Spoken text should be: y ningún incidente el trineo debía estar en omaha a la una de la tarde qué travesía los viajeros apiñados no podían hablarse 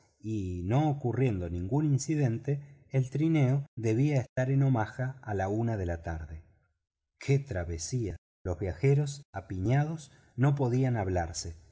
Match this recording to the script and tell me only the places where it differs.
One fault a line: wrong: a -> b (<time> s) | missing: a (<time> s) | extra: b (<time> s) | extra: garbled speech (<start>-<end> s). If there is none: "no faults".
extra: no ocurriendo (0.7 s)